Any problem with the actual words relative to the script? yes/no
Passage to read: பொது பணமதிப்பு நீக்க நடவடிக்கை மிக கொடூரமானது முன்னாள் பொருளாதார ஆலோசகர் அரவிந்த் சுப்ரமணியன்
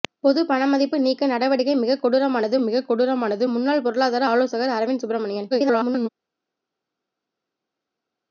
yes